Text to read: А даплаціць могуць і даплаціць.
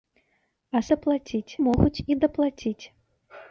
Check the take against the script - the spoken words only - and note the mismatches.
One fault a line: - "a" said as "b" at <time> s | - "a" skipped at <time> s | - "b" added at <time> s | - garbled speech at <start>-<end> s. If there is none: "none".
none